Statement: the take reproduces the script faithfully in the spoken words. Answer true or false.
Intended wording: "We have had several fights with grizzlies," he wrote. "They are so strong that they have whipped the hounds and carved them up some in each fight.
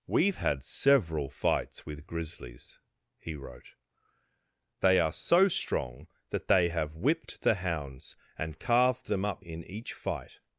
false